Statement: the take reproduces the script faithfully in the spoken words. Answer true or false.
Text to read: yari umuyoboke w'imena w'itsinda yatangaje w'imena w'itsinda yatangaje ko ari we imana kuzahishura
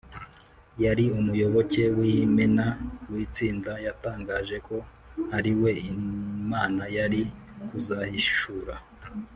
false